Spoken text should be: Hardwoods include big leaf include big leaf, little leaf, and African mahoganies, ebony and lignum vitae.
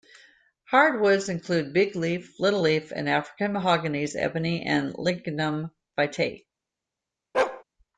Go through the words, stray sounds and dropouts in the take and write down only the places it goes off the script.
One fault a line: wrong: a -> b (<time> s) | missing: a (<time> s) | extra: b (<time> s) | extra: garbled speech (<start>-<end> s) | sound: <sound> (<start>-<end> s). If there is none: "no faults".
missing: include big leaf (2.3 s)
sound: bark (7.3-7.6 s)